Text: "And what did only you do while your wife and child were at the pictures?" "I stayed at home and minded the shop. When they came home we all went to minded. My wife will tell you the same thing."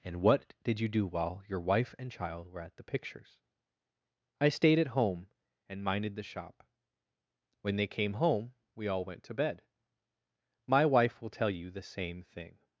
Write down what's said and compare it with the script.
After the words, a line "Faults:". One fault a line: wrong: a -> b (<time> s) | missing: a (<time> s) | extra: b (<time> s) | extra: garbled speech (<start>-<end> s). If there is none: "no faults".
"And what did you do while your wife and child were at the pictures?" "I stayed at home and minded the shop. When they came home we all went to bed. My wife will tell you the same thing."
Faults:
missing: only (0.8 s)
wrong: minded -> bed (9.3 s)